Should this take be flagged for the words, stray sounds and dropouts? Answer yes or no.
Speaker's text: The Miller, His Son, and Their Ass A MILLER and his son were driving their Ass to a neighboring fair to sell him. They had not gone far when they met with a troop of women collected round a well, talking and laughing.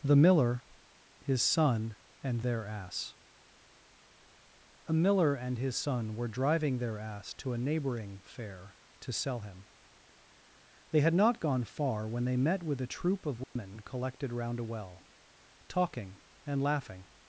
yes